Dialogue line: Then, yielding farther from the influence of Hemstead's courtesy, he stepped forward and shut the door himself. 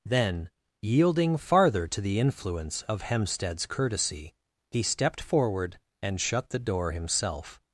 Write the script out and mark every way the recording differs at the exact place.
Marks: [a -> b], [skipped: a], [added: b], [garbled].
Then, yielding farther [from -> to] the influence of Hemstead's courtesy, he stepped forward and shut the door himself.